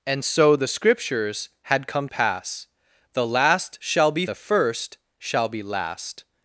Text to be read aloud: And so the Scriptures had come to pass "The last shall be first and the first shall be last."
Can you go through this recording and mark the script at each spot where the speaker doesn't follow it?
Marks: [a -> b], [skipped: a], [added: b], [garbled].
And so the Scriptures had come [skipped: to] pass "The last shall be [skipped: first and] the first shall be last."